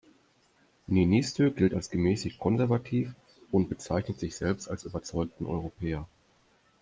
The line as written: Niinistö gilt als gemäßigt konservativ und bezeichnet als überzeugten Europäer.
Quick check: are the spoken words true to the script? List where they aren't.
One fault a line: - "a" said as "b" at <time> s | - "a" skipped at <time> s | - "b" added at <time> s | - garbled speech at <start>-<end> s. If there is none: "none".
- "sich selbst" added at 4.2 s